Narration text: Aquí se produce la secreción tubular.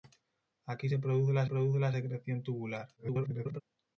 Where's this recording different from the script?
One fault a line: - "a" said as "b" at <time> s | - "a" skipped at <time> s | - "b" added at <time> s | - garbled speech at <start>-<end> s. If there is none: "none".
- "produce la" added at 1.4 s
- garbled speech at 3.0-3.6 s